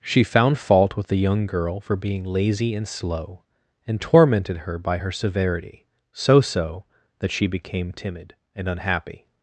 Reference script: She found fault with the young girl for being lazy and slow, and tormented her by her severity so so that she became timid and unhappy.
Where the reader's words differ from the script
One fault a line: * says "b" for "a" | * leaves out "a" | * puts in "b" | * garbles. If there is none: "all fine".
all fine